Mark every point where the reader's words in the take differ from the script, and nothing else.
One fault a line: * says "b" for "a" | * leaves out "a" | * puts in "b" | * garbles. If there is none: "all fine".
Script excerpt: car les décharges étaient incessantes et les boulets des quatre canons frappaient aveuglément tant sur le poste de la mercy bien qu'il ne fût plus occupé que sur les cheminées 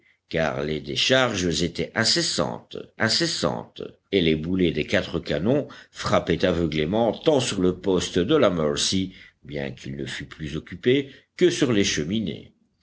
* puts in "incessantes"